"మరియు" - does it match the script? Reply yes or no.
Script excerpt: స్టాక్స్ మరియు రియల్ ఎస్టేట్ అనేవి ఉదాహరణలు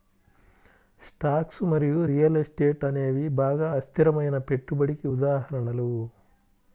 yes